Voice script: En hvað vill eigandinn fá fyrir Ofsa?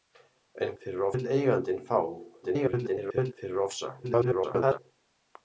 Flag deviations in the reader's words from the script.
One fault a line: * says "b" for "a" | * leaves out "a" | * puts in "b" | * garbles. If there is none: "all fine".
* says "fyrir" for "hvað"
* garbles
* garbles